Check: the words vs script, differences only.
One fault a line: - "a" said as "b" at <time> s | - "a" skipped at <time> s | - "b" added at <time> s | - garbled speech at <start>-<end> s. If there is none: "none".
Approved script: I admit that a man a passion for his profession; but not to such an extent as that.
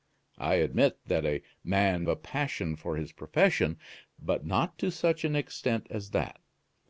none